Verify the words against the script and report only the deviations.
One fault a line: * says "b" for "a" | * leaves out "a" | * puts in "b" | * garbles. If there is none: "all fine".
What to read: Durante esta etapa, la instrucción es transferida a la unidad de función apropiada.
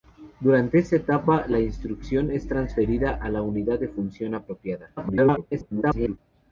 * garbles